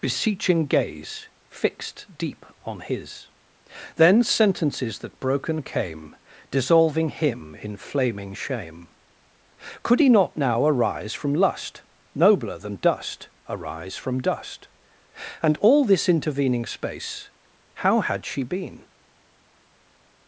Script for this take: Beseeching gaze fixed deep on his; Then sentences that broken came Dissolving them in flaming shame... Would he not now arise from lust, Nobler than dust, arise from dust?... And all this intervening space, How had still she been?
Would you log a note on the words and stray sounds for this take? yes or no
yes